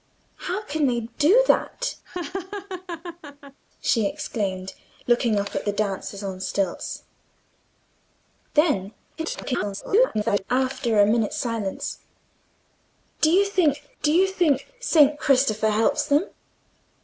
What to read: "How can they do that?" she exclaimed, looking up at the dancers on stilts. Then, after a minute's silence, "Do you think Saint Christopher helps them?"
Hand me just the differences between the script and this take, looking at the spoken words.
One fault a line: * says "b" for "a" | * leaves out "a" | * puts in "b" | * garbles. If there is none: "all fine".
* garbles
* puts in "do you think"